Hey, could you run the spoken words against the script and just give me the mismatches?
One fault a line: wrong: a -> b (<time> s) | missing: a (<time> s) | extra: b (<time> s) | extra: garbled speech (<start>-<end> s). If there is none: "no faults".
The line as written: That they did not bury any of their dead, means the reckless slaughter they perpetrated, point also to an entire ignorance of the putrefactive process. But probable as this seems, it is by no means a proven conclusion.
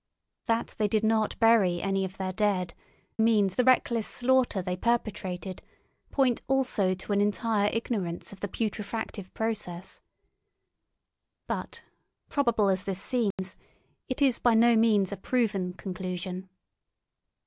no faults